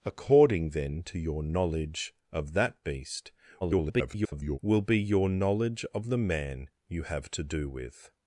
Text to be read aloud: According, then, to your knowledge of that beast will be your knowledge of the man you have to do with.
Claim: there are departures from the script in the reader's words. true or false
true